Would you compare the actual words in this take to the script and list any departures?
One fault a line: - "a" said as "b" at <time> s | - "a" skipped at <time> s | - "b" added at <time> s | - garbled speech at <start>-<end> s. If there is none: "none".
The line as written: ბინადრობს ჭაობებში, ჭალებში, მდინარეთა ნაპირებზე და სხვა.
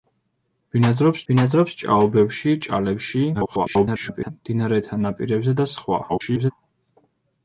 - "ბინადრობს" added at 1.3 s
- garbled speech at 3.3-4.3 s
- garbled speech at 6.1-6.5 s